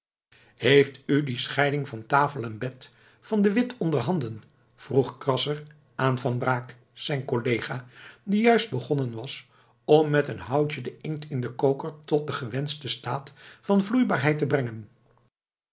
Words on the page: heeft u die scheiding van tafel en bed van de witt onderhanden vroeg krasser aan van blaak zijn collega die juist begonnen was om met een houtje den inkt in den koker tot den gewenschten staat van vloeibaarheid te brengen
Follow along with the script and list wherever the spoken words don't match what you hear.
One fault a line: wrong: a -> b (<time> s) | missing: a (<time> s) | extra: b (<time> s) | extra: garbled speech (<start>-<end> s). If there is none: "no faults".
no faults